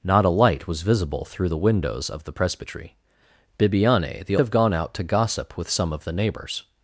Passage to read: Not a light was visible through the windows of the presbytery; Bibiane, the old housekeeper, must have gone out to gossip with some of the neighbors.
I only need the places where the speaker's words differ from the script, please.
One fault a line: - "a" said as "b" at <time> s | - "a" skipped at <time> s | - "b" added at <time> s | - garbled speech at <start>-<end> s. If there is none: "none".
- "old housekeeper must" skipped at 4.3 s